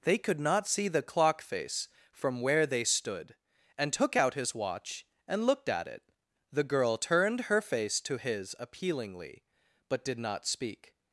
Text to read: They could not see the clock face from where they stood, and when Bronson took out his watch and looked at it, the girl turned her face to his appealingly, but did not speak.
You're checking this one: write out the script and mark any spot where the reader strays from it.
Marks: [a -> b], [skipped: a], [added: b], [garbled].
They could not see the clock face from where they stood, and [skipped: when Bronson] took out his watch and looked at it, the girl turned her face to his appealingly, but did not speak.